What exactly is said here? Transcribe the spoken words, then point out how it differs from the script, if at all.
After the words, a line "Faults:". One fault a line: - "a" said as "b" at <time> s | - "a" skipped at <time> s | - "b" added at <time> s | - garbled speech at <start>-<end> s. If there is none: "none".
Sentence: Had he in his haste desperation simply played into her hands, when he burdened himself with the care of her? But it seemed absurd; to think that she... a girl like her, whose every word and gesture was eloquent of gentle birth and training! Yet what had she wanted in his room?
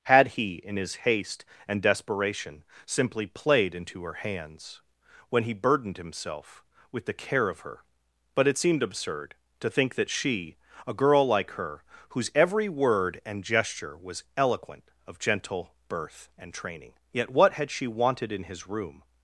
Had he in his haste and desperation simply played into her hands, when he burdened himself with the care of her? But it seemed absurd; to think that she... a girl like her, whose every word and gesture was eloquent of gentle birth and training! Yet what had she wanted in his room?
Faults:
- "and" added at 1.7 s